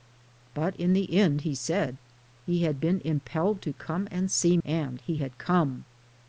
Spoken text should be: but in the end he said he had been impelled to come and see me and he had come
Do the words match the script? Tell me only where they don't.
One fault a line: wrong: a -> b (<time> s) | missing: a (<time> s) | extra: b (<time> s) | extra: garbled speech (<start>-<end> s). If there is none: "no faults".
missing: me (4.6 s)